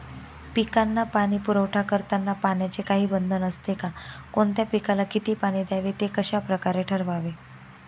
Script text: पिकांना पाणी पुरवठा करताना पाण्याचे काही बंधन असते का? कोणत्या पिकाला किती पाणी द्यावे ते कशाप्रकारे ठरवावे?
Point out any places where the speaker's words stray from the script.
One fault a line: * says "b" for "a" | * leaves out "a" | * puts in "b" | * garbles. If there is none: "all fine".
all fine